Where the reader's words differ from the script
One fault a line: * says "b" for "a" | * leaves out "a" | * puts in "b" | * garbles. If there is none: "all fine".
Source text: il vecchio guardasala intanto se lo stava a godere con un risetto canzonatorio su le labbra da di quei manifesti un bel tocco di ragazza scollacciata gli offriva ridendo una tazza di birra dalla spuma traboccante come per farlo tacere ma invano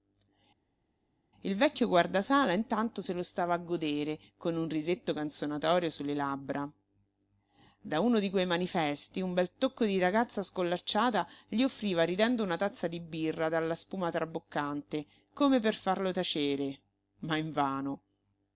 * puts in "uno"